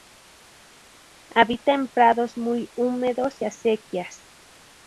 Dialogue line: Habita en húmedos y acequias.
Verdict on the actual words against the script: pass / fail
fail